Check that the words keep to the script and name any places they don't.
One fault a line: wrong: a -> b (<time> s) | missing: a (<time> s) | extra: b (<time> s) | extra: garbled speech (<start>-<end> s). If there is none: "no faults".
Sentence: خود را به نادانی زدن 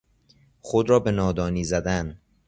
no faults